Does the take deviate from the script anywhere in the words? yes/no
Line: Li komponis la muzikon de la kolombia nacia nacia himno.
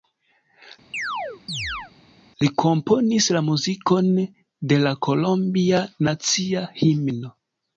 yes